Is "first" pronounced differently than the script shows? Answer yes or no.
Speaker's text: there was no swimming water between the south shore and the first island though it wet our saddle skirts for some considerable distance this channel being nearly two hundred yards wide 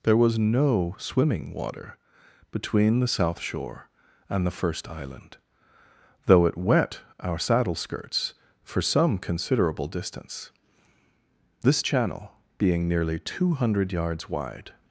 no